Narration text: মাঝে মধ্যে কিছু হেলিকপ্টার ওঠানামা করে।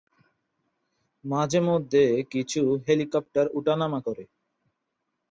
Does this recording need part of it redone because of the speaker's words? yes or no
no